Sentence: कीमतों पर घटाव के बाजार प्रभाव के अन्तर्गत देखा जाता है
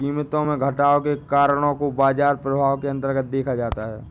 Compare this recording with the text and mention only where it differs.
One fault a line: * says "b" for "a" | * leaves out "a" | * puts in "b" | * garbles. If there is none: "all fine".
* says "में" for "पर"
* puts in "कारणों को"